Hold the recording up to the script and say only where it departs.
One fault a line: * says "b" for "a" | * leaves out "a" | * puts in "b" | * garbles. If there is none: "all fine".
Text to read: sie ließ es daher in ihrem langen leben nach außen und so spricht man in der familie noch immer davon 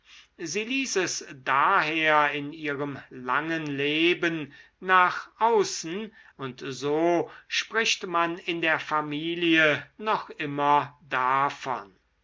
all fine